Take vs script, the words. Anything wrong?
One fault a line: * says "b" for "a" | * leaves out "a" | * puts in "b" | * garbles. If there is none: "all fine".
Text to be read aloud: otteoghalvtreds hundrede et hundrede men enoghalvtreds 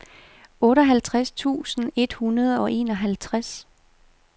* says "tusind" for "hundrede"
* says "og" for "men"